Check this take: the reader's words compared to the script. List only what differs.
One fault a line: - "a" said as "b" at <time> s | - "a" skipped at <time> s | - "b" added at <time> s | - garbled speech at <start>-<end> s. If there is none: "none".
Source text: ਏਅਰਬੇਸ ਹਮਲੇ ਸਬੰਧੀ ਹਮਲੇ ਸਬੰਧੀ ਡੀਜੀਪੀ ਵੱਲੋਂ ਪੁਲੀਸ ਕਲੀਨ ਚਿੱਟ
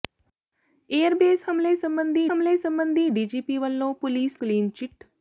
none